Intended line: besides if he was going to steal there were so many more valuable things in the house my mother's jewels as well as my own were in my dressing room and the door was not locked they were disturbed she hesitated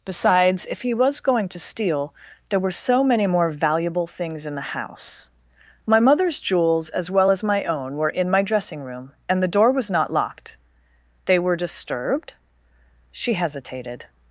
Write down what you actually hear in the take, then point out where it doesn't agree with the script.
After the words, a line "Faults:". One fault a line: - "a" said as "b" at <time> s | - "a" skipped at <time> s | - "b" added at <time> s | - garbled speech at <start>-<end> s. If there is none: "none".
besides if he was going to steal there were so many more valuable things in the house my mother's jewels as well as my own were in my dressing room and the door was not locked they were disturbed she hesitated
Faults:
none